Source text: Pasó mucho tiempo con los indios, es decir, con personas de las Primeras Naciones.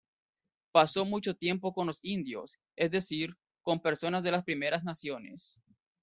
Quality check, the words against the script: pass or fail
pass